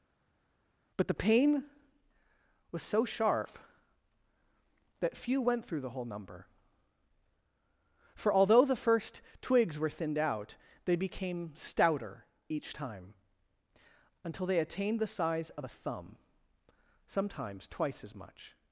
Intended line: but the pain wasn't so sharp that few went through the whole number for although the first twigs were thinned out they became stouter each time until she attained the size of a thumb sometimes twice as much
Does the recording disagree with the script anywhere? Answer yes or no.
yes